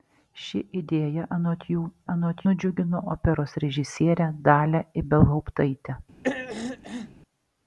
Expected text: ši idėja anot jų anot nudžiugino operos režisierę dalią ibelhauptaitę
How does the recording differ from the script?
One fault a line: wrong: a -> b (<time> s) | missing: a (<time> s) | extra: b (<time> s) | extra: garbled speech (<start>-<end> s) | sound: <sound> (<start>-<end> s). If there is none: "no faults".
sound: throat clearing (6.2-7.1 s)